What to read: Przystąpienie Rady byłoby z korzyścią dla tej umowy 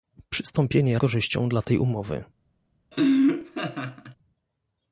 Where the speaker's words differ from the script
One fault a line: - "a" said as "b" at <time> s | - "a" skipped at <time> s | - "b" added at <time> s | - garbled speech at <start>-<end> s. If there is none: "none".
- "Rady byłoby z" skipped at 1.0 s